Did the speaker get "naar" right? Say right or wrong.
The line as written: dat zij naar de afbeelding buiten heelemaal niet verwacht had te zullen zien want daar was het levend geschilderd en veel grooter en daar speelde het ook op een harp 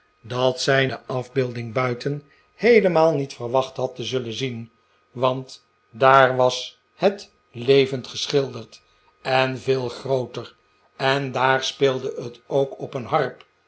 wrong